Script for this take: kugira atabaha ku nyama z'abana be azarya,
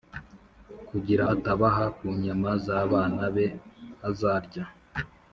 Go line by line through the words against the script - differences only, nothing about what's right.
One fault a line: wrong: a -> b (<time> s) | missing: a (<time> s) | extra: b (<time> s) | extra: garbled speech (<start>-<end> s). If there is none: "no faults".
no faults